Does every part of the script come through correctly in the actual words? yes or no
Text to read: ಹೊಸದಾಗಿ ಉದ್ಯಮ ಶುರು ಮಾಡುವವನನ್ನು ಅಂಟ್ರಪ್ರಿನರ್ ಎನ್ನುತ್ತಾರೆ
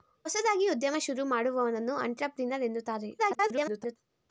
no